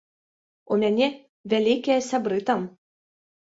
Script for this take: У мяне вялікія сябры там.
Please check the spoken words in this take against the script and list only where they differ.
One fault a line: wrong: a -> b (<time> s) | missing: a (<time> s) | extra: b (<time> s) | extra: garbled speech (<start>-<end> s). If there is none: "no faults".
no faults